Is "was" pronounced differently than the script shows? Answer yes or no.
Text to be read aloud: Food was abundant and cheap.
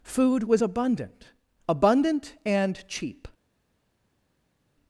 no